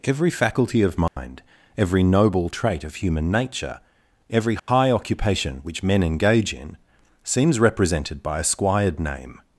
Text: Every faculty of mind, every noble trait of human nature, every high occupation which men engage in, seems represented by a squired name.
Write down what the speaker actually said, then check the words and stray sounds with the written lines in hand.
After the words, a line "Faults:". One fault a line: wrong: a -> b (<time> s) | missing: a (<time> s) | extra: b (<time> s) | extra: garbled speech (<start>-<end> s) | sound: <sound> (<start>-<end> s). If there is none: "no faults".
Every faculty of mind, every noble trait of human nature, every high occupation which men engage in, seems represented by a squired name.
Faults:
sound: dropout (1.1-1.2 s)
sound: dropout (4.6-4.7 s)